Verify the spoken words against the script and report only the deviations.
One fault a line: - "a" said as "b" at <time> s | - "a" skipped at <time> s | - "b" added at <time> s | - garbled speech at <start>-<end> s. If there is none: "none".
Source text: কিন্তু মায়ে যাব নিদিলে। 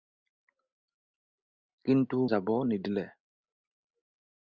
- "মায়ে" skipped at 2.2 s